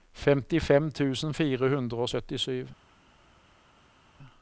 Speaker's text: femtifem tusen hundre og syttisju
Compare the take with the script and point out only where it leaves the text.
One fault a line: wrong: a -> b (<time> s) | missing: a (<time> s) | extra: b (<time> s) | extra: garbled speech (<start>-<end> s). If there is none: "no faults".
extra: fire (1.3 s)